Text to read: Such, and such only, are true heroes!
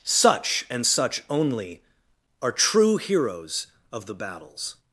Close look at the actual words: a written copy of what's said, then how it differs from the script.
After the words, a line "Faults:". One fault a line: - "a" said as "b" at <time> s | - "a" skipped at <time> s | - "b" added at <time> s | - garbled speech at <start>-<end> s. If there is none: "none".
Such, and such only, are true heroes! Of the battles
Faults:
- "Of the battles" added at 3.9 s